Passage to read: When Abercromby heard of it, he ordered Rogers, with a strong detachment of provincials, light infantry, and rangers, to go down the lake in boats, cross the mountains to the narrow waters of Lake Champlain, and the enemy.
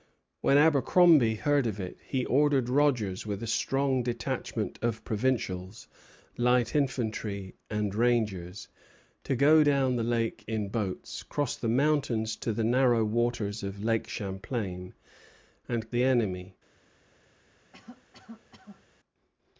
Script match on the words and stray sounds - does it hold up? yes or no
no